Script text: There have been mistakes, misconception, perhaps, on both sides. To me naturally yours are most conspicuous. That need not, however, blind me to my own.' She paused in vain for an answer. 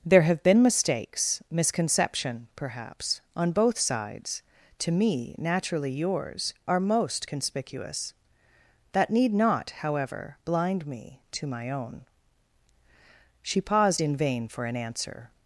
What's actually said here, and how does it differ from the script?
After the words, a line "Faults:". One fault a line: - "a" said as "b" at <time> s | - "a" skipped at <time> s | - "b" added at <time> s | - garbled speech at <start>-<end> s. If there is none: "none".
There have been mistakes, misconception, perhaps, on both sides. To me naturally yours are most conspicuous. That need not, however, blind me to my own.' She paused in vain for an answer.
Faults:
none